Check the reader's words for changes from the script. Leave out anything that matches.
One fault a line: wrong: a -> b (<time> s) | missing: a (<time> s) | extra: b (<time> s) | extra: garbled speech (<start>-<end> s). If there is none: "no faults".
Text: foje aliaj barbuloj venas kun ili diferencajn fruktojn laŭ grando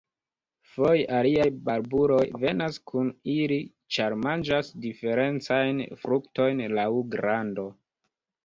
extra: ĉar manĝas (4.0 s)